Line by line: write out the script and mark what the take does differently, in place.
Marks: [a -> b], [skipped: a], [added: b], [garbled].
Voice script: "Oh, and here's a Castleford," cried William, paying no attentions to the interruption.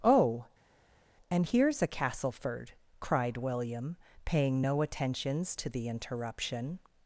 "Oh, and here's a Castleford," cried William, paying no attentions to the interruption.